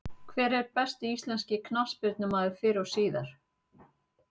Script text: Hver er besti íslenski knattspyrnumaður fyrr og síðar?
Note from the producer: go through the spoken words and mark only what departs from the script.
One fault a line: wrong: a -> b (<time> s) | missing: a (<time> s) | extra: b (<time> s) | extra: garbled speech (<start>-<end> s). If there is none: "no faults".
no faults